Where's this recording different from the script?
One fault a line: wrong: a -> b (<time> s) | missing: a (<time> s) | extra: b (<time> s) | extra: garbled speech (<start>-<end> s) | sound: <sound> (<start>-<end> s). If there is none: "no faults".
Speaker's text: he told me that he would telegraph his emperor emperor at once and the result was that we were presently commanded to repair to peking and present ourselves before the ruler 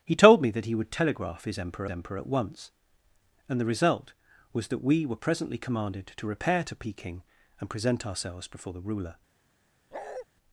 sound: bark (9.9-10.3 s)